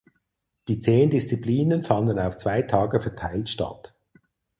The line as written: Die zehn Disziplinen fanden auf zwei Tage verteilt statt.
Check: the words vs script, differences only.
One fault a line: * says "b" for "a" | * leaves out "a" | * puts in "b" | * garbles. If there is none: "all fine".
all fine